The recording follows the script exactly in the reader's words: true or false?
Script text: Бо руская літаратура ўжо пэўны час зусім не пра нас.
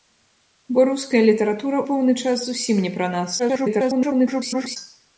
false